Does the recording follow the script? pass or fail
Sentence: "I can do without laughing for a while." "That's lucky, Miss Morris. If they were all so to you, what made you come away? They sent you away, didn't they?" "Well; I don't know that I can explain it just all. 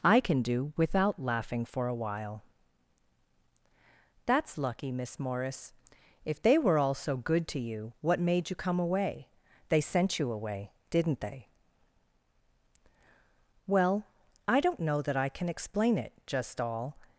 fail